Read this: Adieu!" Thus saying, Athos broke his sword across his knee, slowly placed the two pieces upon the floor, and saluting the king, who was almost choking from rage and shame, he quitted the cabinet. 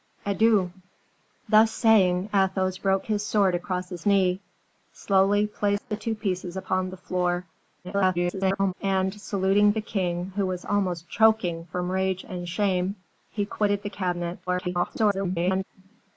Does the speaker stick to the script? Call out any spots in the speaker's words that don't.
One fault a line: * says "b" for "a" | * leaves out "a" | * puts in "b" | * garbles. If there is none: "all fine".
* garbles
* garbles